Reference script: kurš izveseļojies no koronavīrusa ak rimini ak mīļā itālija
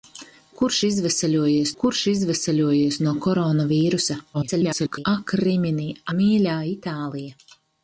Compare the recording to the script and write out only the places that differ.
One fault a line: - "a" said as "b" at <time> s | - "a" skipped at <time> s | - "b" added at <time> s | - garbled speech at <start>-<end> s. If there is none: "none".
- "kurš izveseļojies" added at 1.8 s
- garbled speech at 4.3-5.1 s
- "ak" skipped at 5.9 s